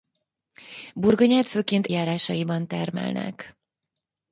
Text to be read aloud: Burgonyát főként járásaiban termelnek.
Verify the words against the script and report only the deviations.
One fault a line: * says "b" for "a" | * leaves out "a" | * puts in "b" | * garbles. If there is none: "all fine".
all fine